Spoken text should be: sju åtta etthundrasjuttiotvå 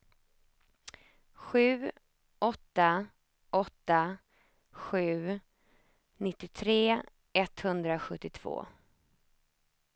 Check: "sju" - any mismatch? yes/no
no